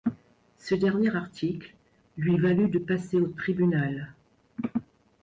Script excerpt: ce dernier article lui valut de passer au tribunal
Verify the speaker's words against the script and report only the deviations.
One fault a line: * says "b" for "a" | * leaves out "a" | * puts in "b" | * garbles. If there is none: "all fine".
all fine